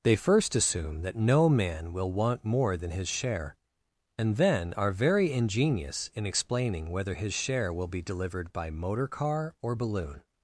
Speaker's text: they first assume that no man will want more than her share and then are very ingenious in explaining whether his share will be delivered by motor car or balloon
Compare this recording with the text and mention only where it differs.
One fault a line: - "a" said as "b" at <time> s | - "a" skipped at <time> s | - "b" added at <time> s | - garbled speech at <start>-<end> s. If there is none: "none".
- "her" said as "his" at 2.9 s